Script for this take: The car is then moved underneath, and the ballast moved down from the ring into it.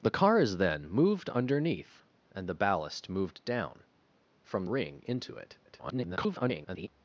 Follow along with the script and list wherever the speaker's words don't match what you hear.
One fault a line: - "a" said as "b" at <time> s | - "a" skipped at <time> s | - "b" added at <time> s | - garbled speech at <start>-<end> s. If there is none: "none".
- "the" skipped at 4.7 s
- garbled speech at 5.7-6.9 s